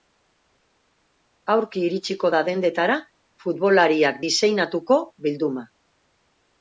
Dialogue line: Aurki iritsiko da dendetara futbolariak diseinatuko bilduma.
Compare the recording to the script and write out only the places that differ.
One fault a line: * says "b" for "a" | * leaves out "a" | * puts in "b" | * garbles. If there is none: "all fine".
all fine